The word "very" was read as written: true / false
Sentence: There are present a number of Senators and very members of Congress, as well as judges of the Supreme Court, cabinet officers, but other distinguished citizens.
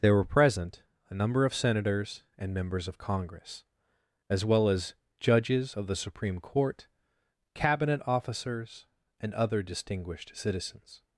false